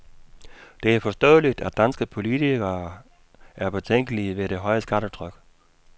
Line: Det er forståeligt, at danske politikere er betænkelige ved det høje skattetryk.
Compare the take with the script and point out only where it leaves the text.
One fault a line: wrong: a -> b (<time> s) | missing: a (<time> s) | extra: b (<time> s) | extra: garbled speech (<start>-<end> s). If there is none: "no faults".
no faults